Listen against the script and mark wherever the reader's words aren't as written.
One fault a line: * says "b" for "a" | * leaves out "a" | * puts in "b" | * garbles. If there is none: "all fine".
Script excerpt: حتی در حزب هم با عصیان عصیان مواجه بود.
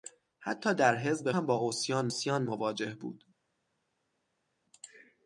all fine